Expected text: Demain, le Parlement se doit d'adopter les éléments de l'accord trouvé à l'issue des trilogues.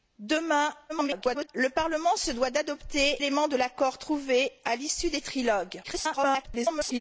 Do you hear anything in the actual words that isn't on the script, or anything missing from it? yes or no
yes